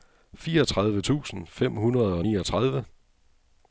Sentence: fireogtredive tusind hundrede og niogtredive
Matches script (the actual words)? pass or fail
fail